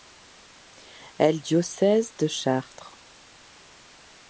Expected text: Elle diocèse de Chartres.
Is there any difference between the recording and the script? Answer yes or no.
no